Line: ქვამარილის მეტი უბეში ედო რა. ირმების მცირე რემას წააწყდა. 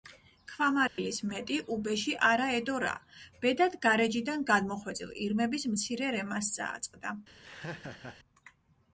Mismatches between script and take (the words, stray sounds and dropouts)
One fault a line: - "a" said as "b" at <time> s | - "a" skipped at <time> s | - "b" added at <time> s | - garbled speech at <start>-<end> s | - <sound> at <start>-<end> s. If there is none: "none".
- dropout at 0.9-1.0 s
- "არა" added at 2.3 s
- "ბედად გარეჯიდან გადმოხვეწილ" added at 3.5 s
- laugh at 7.4-8.2 s